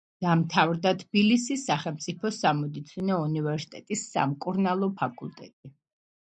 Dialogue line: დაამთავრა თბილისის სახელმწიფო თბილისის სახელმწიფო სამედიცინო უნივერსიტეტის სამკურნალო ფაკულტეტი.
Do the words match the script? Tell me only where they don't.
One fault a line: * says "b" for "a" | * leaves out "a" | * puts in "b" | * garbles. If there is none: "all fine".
* leaves out "თბილისის სახელმწიფო"